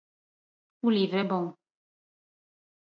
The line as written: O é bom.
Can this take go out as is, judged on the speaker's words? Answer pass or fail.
fail